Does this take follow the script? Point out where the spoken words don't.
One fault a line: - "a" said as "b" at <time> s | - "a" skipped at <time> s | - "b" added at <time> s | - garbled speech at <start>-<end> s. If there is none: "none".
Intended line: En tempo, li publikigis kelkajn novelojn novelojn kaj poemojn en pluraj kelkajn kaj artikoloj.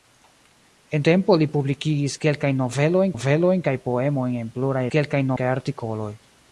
none